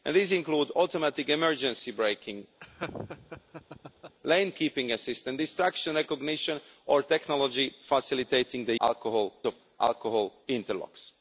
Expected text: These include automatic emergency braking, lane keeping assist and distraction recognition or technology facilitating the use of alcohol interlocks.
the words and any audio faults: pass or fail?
fail